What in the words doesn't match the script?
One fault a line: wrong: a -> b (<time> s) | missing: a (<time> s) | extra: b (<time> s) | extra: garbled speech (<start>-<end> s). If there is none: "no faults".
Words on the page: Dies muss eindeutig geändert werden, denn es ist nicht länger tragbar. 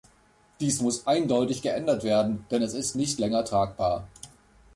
no faults